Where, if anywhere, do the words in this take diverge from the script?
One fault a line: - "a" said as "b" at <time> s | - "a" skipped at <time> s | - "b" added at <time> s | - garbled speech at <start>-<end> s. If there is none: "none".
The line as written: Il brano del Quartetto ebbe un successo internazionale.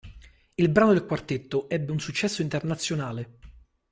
none